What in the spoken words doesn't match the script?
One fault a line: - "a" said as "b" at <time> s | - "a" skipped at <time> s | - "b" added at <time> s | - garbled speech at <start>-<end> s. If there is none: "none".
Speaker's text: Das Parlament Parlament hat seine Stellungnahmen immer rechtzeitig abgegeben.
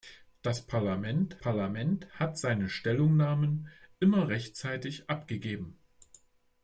none